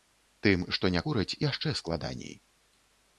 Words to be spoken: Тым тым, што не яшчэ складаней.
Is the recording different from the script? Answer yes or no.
yes